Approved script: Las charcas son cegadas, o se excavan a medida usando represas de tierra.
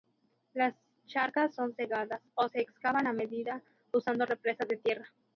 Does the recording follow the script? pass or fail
pass